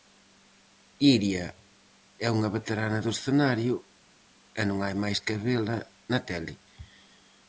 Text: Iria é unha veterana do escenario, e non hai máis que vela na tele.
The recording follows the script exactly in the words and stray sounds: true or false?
true